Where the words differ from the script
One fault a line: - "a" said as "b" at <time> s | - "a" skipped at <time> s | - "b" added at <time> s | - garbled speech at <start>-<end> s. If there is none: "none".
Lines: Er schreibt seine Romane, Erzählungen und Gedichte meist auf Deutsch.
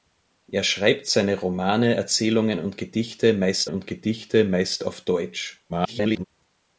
- "und Gedichte meist" added at 3.7 s
- garbled speech at 5.7-6.2 s